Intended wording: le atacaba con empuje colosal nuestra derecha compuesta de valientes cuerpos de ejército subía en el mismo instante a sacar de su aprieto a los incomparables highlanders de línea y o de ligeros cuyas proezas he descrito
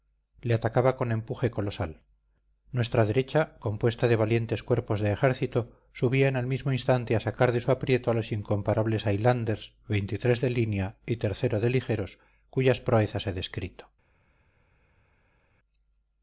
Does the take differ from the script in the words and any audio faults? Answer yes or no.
no